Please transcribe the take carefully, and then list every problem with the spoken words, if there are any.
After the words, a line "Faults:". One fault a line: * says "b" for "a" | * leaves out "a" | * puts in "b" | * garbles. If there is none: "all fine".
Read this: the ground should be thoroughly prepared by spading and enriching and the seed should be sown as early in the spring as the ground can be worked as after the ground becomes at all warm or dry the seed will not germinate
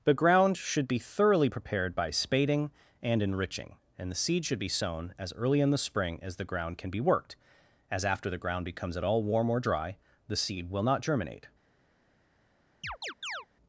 the ground should be thoroughly prepared by spading and enriching and the seed should be sown as early in the spring as the ground can be worked as after the ground becomes at all warm or dry the seed will not germinate
Faults:
all fine